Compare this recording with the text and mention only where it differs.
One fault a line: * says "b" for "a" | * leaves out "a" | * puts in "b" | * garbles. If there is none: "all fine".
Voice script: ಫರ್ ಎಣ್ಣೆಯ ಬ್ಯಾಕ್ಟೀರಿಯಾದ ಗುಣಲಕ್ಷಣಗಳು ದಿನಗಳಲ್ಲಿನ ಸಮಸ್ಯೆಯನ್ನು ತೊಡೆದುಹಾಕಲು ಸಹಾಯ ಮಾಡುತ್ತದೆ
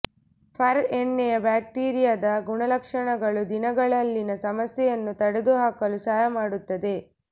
all fine